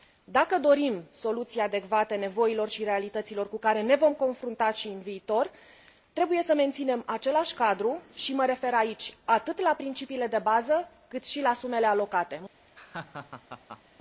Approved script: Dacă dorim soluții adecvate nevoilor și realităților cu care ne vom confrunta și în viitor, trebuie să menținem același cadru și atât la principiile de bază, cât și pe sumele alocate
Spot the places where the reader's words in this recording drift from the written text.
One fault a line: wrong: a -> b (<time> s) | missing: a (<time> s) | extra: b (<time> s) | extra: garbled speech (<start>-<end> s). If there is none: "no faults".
extra: mă refer aici (8.3 s)
wrong: pe -> la (11.4 s)